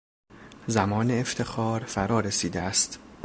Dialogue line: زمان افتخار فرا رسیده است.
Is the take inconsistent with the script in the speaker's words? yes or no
no